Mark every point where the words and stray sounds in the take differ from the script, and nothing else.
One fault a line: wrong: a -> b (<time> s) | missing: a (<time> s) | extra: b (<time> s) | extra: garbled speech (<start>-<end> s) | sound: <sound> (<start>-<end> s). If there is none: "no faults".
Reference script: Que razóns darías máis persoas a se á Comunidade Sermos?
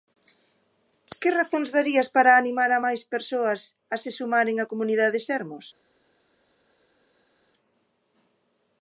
extra: para animar a (2.1 s)
extra: sumaren (4.2 s)